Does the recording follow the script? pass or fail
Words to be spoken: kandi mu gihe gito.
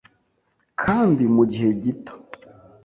pass